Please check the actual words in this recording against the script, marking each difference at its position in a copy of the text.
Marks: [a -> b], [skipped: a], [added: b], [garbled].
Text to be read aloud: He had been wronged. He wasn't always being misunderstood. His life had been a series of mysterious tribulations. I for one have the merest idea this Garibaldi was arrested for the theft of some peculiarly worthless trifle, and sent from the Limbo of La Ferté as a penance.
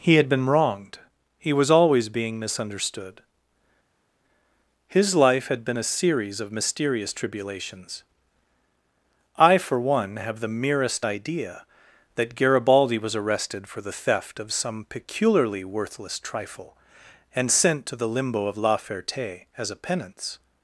He had been wronged. He [wasn't -> was] always being misunderstood. His life had been a series of mysterious tribulations. I for one have the merest idea [this -> that] Garibaldi was arrested for the theft of some peculiarly worthless trifle, and sent [from -> to] the Limbo of La Ferté as a penance.